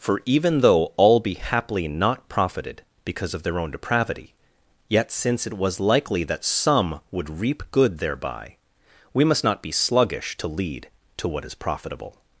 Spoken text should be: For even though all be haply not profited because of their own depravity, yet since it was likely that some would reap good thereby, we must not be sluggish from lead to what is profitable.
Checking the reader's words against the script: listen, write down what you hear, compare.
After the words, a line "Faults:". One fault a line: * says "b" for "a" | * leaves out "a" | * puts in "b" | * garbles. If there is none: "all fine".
For even though all be haply not profited because of their own depravity, yet since it was likely that some would reap good thereby, we must not be sluggish to lead to what is profitable.
Faults:
* says "to" for "from"